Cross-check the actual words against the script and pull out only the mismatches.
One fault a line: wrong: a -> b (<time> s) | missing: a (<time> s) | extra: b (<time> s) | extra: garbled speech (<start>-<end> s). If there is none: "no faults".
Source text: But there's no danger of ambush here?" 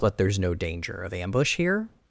no faults